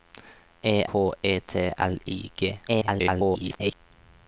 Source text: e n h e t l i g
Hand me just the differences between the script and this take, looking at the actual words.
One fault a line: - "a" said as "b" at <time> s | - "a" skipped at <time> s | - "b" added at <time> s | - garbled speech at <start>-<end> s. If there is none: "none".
- "n" skipped at 0.8 s
- garbled speech at 2.7-3.7 s